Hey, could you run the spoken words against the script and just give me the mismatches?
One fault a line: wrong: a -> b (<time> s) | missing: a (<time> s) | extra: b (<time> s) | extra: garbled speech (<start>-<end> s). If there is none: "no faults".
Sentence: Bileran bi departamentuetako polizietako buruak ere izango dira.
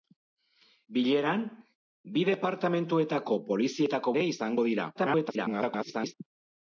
missing: buruak (4.2 s)
extra: garbled speech (4.9-6.1 s)